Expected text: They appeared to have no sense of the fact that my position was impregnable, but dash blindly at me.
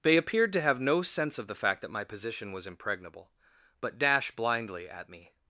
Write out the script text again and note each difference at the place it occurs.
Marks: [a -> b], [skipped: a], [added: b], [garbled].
They appeared to have no sense of the fact that my position was impregnable, but dash blindly at me.